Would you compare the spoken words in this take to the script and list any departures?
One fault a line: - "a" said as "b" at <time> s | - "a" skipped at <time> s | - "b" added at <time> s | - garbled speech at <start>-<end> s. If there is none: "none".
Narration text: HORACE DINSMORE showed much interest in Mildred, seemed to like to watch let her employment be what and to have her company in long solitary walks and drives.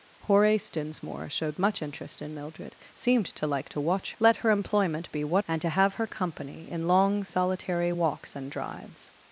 none